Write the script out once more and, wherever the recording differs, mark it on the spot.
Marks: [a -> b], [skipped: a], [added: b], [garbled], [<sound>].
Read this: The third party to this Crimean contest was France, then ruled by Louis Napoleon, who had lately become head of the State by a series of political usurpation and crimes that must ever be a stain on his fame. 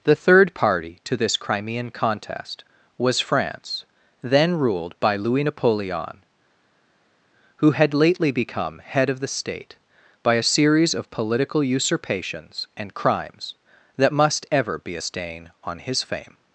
The third party to this Crimean contest was France, then ruled by Louis Napoleon, who had lately become head of the State by a series of political [usurpation -> usurpations] and crimes that must ever be a stain on his fame.